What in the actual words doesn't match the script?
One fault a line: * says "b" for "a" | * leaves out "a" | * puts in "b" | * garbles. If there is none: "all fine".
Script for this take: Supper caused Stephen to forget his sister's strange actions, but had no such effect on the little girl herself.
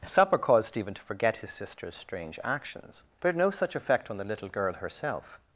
all fine